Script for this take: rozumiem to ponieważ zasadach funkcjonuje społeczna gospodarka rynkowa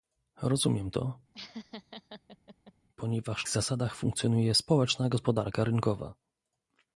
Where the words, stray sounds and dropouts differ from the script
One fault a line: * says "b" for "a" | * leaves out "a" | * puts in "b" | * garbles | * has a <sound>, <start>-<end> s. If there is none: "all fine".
* has a laugh, 1.3-2.7 s